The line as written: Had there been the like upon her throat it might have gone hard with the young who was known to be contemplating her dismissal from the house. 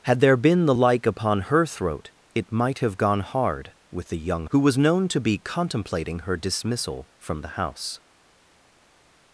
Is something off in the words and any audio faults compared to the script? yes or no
no